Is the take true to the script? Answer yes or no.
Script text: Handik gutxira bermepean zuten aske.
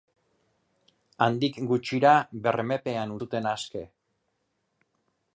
yes